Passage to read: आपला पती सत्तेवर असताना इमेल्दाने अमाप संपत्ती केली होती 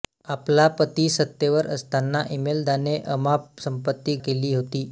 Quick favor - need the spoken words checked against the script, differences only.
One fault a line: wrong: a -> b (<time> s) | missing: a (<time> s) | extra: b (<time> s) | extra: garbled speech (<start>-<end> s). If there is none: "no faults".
no faults